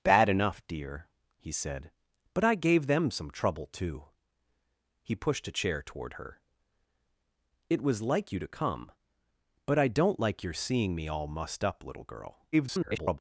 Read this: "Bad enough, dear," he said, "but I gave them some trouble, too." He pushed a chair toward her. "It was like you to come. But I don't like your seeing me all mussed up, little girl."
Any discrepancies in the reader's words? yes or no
yes